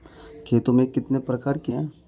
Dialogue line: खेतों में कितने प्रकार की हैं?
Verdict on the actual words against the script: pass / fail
pass